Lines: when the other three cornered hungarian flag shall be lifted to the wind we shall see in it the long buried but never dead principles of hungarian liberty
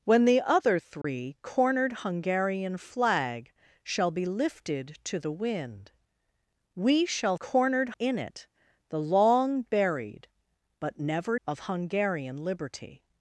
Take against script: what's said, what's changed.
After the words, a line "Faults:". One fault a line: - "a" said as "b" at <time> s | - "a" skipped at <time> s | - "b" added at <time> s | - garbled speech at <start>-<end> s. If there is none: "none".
when the other three cornered hungarian flag shall be lifted to the wind we shall cornered in it the long buried but never of hungarian liberty
Faults:
- "see" said as "cornered" at 7.4 s
- "dead principles" skipped at 11.4 s